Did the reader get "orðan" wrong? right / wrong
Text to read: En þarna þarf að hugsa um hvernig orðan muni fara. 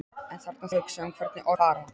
wrong